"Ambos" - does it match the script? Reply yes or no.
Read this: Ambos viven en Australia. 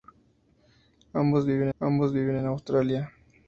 yes